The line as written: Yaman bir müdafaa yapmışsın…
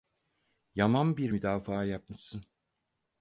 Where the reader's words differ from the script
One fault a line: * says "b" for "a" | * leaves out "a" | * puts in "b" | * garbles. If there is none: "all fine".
all fine